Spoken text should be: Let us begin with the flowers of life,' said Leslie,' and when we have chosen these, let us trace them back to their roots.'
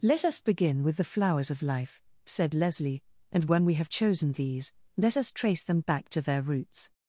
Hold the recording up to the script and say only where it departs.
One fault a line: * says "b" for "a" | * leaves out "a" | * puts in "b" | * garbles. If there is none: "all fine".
all fine